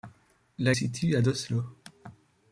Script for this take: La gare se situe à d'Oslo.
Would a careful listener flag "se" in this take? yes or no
yes